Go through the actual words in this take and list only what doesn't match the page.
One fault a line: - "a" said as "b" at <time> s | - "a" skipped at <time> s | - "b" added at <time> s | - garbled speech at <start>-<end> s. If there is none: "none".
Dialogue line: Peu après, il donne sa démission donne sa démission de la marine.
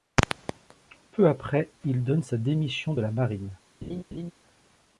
- "donne sa démission" skipped at 3.0 s